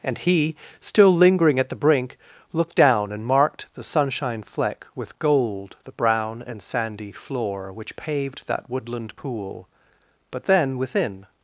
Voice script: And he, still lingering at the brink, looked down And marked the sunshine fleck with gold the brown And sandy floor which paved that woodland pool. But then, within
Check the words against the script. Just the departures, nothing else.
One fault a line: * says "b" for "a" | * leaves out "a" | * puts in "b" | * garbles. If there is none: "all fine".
all fine